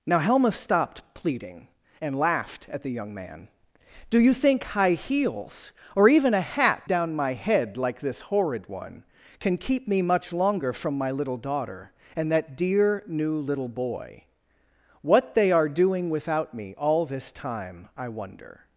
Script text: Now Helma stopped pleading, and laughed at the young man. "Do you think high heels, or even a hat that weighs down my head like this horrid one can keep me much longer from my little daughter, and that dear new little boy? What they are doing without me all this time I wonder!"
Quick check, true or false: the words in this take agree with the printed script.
false